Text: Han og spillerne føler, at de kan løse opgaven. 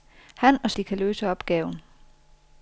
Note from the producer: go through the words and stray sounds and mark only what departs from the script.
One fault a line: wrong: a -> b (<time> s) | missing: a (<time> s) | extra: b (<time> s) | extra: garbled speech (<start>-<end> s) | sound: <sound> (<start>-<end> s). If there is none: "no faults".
missing: spillerne føler at (0.7 s)